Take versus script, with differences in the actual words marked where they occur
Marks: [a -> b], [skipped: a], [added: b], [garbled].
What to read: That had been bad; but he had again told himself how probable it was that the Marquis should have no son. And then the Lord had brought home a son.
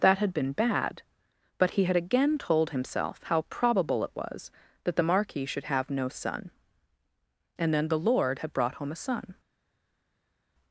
That had been bad; but he had again told himself how probable it was that the Marquis should have no son. And then the Lord had brought home a son.